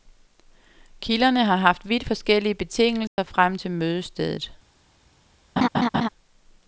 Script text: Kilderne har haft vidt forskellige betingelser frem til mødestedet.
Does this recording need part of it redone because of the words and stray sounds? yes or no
yes